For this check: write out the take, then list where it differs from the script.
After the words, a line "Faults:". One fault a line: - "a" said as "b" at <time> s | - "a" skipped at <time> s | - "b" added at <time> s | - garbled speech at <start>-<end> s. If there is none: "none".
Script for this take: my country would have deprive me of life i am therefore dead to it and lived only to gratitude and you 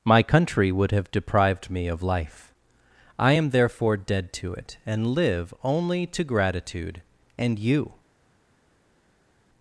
my country would have deprived me of life i am therefore dead to it and live only to gratitude and you
Faults:
- "deprive" said as "deprived" at 1.1 s
- "lived" said as "live" at 5.1 s